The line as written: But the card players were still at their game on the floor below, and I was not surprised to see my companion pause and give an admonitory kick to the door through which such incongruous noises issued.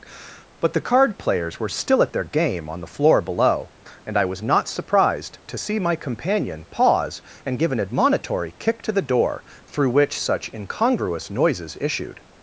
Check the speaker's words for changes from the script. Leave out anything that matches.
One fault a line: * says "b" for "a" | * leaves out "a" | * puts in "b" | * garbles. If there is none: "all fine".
all fine